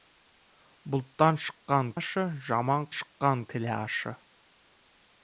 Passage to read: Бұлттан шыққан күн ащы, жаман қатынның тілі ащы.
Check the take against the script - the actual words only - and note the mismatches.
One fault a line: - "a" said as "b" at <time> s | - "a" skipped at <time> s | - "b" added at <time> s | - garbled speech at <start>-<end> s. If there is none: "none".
- "күн" skipped at 1.9 s
- "қатынның" said as "шыққан" at 3.0 s